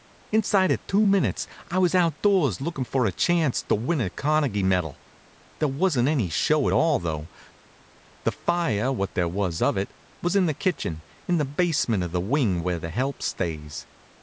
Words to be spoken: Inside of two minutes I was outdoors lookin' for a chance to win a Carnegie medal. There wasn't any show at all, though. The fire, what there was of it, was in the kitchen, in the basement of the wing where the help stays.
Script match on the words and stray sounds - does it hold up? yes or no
yes